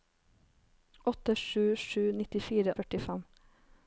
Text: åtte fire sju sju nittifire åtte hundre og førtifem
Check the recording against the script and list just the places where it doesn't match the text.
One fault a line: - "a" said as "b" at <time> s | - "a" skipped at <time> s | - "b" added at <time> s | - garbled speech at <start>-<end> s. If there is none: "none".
- "fire" skipped at 1.4 s
- "åtte hundre og" skipped at 2.7 s